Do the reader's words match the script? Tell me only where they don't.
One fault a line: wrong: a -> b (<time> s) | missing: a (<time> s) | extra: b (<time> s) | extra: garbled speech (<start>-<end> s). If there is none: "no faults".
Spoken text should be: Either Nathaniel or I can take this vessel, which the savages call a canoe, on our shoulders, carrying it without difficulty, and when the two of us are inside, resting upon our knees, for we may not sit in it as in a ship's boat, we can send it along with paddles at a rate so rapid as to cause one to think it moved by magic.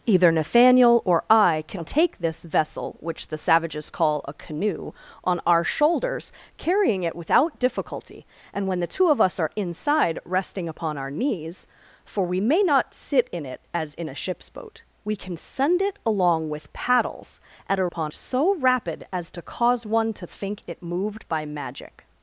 wrong: rate -> upon (17.8 s)